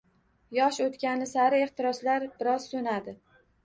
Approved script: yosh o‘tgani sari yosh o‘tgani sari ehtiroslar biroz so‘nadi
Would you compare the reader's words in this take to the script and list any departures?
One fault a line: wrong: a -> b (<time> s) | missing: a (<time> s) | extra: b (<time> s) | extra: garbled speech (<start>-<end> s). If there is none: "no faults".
missing: yosh o‘tgani sari (1.6 s)